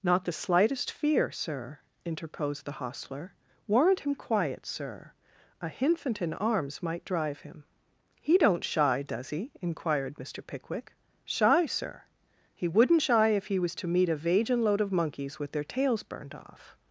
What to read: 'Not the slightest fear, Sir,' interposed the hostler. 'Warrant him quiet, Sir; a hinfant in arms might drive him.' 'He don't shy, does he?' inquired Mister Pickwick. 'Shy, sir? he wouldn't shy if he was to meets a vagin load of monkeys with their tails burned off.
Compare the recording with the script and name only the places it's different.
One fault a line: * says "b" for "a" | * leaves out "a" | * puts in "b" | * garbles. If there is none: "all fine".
* says "meet" for "meets"